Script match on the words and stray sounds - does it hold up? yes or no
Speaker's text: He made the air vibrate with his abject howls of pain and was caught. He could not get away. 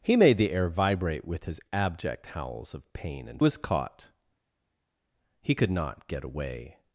yes